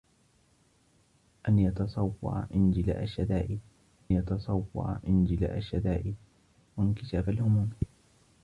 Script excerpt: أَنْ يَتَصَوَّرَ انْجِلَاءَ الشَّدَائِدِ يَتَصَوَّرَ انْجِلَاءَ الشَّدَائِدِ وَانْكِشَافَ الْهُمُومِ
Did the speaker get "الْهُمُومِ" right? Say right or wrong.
right